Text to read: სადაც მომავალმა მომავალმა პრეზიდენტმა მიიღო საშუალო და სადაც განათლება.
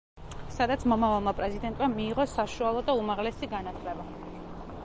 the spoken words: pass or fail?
fail